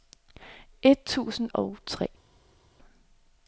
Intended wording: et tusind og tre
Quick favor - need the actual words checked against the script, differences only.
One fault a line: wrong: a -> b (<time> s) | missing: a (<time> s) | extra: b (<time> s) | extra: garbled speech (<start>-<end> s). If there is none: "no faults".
no faults